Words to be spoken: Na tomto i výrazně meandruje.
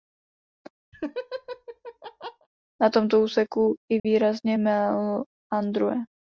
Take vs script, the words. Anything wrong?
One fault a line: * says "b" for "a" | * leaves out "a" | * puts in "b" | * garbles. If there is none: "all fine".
* puts in "úseku"